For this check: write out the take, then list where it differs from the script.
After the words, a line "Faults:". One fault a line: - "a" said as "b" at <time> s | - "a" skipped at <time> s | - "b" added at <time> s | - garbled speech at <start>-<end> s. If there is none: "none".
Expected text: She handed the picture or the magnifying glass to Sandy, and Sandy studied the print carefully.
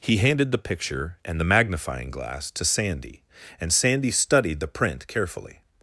He handed the picture and the magnifying glass to Sandy, and Sandy studied the print carefully.
Faults:
- "She" said as "He" at 0.0 s
- "or" said as "and" at 1.2 s